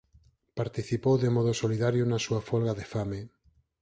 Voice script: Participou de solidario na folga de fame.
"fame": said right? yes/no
yes